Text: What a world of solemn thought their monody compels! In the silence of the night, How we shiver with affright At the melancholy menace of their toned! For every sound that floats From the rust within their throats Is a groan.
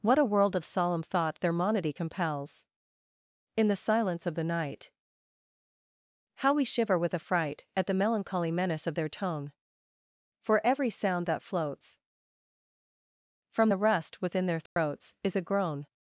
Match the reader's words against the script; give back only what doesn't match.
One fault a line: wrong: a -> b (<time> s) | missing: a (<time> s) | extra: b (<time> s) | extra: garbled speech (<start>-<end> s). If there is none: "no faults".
wrong: toned -> tone (9.1 s)